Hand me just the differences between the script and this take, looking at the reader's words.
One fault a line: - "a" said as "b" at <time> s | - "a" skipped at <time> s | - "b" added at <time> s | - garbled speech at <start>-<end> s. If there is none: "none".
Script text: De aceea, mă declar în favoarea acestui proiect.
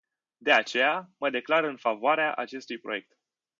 none